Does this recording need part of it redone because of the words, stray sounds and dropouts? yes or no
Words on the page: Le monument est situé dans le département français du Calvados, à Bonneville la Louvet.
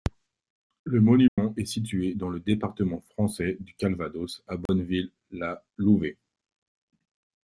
yes